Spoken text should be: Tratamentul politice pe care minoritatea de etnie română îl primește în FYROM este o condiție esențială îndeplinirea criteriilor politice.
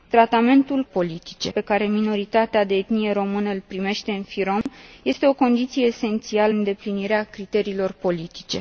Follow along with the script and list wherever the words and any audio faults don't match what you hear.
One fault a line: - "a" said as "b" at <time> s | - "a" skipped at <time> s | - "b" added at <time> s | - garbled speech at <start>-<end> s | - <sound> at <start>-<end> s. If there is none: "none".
- dropout at 4.6-4.7 s